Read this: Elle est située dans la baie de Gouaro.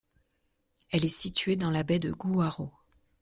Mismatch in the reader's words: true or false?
false